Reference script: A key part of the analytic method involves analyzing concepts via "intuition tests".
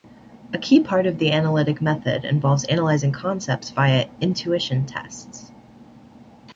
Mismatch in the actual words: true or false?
false